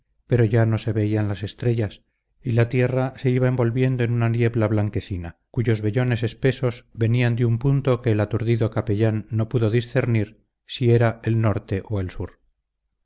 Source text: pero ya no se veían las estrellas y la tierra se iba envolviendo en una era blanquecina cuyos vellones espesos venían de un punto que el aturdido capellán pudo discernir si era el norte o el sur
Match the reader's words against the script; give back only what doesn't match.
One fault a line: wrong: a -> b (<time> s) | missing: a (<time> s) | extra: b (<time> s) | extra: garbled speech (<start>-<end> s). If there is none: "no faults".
wrong: era -> niebla (4.3 s)
extra: no (9.3 s)